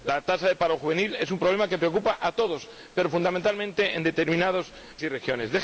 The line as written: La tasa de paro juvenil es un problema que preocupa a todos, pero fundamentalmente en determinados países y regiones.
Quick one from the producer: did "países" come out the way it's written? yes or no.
no